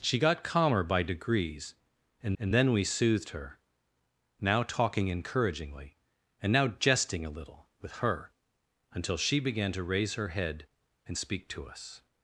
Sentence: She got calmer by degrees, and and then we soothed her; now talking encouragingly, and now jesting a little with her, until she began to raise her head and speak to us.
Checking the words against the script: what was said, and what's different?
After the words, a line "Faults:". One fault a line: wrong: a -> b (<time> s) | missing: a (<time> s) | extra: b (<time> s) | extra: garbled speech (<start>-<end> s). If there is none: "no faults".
She got calmer by degrees, and and then we soothed her; now talking encouragingly, and now jesting a little with her, until she began to raise her head and speak to us.
Faults:
no faults